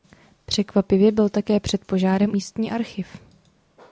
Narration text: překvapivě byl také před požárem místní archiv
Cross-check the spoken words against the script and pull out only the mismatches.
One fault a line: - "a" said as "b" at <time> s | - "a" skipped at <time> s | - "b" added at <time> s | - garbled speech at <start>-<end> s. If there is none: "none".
none